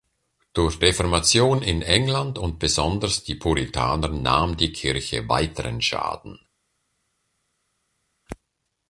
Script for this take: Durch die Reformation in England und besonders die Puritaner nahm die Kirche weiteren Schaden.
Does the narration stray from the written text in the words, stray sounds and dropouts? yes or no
yes